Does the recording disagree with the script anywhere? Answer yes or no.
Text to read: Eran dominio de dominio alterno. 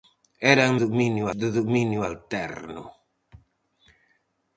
no